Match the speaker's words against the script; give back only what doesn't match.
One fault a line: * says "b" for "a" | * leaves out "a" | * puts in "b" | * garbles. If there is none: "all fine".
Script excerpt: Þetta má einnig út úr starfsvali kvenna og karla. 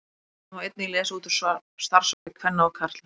* puts in "lesa"